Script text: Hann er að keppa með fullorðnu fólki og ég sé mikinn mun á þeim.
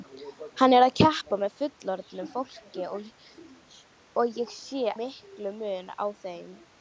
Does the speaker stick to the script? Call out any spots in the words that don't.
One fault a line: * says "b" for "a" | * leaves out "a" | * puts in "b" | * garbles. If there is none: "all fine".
all fine